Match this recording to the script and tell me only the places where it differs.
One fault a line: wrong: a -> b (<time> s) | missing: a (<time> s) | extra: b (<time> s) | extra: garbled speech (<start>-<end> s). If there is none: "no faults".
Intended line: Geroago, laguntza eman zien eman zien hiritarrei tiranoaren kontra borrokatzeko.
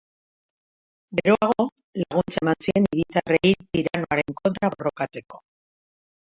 missing: eman zien (2.9 s)